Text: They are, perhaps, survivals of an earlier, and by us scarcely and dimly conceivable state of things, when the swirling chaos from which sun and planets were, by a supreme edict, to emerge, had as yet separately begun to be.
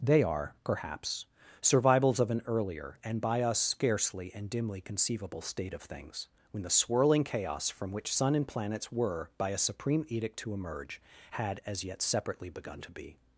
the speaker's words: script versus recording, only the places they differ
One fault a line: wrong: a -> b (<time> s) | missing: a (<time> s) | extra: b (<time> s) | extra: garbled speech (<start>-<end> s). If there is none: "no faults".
no faults